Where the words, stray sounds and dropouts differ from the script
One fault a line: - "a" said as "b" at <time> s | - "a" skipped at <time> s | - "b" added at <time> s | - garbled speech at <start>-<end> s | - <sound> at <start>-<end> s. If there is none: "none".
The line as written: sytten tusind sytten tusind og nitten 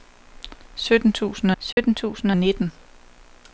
- dropout at 1.7-1.8 s